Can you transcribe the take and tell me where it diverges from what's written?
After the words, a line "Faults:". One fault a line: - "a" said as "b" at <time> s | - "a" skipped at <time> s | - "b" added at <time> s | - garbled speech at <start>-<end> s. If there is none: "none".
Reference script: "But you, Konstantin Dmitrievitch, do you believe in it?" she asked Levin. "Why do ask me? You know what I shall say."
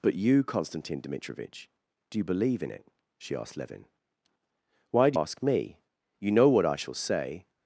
"But you, Konstantin Dmitrievitch, do you believe in it?" she asked Levin. "Why do ask me? You know what I shall say."
Faults:
none